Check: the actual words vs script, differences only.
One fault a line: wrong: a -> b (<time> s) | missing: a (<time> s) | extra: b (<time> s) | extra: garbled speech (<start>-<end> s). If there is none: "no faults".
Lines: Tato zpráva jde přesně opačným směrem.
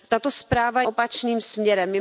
missing: jde přesně (0.8 s)